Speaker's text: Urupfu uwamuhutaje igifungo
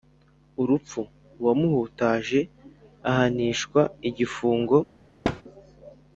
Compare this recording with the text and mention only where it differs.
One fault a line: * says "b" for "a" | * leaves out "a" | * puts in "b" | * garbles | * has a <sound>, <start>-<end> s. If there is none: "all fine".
* puts in "ahanishwa"
* has a thud, 5.2-5.4 s